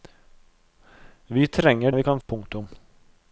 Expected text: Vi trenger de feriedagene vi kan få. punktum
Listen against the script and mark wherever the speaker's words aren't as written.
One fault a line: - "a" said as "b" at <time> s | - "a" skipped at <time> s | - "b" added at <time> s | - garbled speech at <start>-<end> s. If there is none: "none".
- "de feriedagene" skipped at 1.9 s
- "få" skipped at 2.2 s